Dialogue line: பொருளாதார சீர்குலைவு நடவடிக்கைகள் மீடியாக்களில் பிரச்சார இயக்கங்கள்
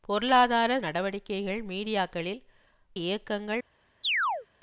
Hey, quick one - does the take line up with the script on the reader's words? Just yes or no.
no